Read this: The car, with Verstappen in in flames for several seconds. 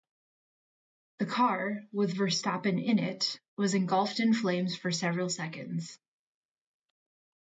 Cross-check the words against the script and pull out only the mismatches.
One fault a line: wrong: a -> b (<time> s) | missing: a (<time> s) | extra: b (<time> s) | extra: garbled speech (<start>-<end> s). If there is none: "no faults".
extra: it was engulfed (3.0 s)